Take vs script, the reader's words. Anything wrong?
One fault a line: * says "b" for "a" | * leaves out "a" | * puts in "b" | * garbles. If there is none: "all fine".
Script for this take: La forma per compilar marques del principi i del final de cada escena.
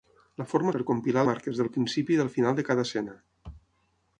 all fine